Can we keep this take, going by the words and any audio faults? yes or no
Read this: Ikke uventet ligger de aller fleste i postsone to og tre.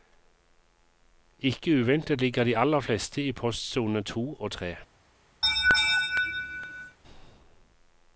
no